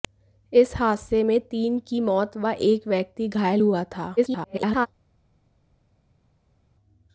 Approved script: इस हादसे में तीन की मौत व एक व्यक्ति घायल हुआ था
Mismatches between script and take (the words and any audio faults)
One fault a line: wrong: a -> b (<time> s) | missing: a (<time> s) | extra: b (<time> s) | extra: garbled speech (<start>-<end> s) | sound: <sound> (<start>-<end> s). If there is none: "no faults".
extra: garbled speech (4.2-4.9 s)